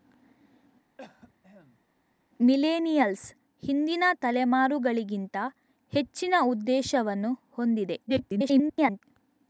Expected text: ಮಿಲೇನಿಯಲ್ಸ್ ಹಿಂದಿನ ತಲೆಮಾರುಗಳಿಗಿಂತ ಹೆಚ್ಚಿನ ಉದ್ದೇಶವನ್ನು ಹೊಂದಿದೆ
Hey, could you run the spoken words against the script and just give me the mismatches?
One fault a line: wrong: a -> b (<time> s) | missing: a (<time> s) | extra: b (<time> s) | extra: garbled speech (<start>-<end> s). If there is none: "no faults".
extra: garbled speech (8.1-9.0 s)